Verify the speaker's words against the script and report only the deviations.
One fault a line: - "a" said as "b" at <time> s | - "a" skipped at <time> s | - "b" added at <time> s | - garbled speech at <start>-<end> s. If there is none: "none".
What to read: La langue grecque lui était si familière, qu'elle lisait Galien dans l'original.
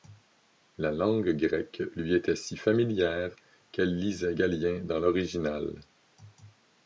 none